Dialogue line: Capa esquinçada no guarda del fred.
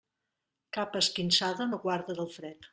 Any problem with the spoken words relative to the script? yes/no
no